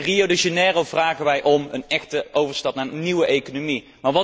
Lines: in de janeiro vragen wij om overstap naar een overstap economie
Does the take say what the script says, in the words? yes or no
no